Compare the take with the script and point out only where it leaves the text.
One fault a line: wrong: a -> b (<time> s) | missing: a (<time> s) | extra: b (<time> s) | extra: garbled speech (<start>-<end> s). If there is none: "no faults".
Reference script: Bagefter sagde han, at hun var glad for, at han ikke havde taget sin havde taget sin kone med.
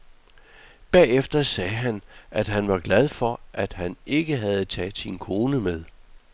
wrong: hun -> han (2.5 s)
missing: havde taget sin (5.2 s)